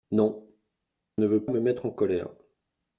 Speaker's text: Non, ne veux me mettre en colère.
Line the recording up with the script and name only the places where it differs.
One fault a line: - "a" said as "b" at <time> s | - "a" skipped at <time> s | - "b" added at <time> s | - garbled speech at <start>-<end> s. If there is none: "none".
none